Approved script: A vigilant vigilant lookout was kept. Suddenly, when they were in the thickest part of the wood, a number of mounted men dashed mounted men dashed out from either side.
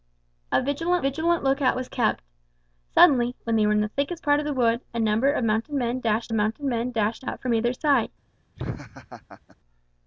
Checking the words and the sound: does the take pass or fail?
fail